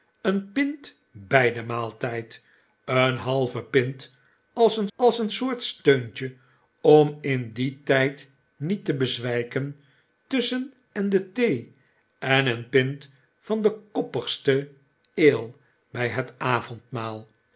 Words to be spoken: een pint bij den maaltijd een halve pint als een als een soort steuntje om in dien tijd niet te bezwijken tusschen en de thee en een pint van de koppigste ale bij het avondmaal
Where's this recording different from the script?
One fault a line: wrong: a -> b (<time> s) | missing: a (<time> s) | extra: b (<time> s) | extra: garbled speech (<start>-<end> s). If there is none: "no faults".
no faults